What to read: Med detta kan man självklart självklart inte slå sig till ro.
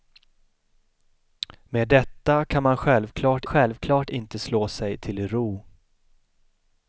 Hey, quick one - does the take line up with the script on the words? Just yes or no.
yes